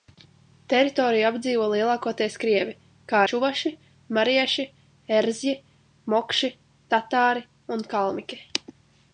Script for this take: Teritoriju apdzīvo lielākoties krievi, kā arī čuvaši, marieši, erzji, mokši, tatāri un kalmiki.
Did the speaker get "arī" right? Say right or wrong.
wrong